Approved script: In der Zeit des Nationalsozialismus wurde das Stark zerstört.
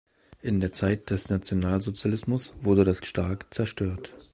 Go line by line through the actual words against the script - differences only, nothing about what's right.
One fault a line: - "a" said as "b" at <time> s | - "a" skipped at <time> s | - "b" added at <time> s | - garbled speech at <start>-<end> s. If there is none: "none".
none